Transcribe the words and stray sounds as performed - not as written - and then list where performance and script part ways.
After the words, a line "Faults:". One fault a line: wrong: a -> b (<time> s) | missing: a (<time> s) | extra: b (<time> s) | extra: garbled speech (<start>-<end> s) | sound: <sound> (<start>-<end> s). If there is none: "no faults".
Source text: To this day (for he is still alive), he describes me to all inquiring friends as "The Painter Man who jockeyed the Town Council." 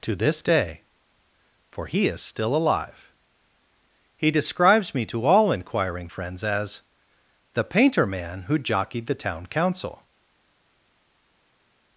To this day (for he is still alive), he describes me to all inquiring friends as "The Painter Man who jockeyed the Town Council."
Faults:
no faults